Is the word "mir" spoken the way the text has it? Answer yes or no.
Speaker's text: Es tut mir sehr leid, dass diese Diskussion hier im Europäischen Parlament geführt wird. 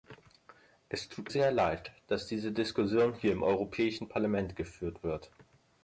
no